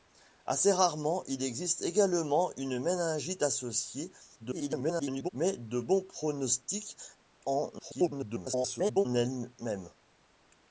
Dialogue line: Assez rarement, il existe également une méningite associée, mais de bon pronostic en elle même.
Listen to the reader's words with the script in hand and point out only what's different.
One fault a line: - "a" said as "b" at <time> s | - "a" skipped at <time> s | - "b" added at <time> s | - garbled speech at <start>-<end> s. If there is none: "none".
- garbled speech at 4.4-5.3 s
- garbled speech at 7.8-9.1 s